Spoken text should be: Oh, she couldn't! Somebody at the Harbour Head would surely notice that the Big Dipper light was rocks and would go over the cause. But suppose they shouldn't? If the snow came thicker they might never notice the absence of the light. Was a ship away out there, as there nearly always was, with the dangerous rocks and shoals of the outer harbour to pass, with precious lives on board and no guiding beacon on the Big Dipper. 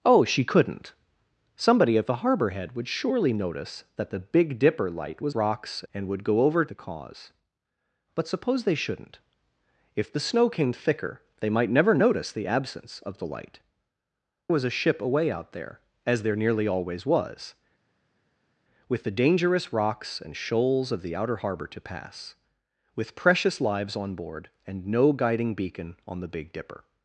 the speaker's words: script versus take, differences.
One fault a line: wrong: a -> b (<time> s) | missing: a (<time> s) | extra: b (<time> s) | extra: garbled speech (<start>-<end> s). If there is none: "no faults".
no faults